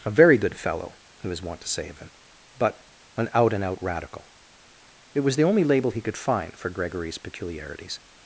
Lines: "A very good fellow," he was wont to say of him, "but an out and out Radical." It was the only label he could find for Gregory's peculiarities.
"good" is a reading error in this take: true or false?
false